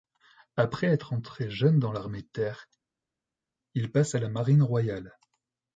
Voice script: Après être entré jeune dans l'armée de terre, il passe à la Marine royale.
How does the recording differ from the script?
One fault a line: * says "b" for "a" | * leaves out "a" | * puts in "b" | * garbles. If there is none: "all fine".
all fine